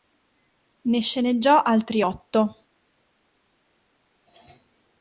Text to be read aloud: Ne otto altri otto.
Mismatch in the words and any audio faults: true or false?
true